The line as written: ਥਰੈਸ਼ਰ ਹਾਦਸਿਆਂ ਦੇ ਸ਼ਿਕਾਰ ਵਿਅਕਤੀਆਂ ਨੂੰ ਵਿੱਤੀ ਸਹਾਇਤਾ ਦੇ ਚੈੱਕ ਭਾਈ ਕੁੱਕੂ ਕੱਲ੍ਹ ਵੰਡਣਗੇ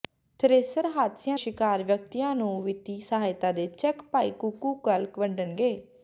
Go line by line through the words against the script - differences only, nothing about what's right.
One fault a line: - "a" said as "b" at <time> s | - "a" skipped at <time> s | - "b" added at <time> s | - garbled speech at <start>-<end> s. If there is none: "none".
- "ਦੇ" skipped at 1.4 s